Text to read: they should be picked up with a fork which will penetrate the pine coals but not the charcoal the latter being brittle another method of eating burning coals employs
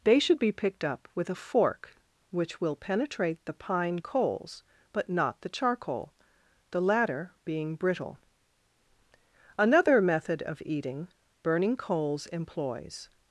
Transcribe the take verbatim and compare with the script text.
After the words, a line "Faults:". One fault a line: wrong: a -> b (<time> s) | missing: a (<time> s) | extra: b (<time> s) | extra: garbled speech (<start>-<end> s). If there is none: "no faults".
they should be picked up with a fork which will penetrate the pine coals but not the charcoal the latter being brittle another method of eating burning coals employs
Faults:
no faults